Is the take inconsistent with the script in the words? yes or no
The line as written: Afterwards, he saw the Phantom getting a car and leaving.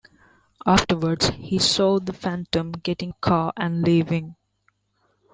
no